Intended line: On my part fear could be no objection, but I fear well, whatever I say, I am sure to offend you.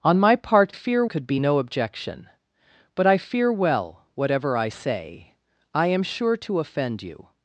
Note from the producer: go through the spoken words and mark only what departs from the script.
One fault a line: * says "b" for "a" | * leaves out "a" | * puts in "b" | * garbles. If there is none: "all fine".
all fine